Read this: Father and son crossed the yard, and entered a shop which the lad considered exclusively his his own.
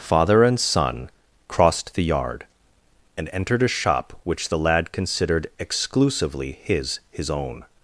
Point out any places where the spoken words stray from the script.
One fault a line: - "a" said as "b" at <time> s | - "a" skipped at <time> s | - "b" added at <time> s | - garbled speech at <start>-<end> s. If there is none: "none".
none